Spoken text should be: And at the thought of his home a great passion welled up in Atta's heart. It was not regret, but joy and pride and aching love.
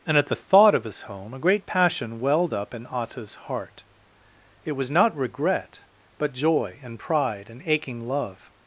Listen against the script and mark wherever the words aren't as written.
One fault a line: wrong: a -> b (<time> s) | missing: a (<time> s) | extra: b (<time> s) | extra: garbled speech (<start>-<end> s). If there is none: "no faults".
no faults